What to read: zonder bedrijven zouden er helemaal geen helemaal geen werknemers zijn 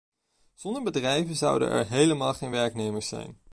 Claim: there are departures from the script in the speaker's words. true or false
true